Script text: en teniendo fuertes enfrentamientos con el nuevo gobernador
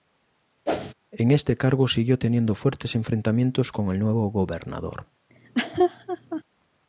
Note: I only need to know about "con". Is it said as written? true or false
true